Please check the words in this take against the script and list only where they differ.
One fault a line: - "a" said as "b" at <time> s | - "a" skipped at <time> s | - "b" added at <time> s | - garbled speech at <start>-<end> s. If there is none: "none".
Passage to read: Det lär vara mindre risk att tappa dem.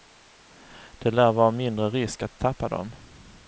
none